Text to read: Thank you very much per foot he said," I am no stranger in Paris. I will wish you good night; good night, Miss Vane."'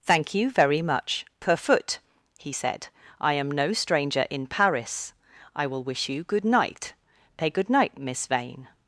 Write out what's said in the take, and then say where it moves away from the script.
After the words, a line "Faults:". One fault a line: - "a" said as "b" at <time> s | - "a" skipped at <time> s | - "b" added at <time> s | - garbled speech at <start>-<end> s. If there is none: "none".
Thank you very much per foot he said," I am no stranger in Paris. I will wish you good night; pay good night, Miss Vane."'
Faults:
- "pay" added at 7.4 s